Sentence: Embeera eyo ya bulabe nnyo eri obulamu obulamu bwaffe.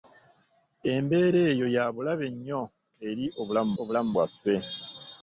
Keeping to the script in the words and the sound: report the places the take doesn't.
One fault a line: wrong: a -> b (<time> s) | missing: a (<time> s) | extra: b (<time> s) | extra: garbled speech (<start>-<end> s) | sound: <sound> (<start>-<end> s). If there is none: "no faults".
no faults